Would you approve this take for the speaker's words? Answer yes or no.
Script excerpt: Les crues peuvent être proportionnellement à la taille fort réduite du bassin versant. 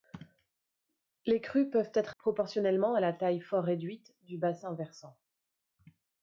yes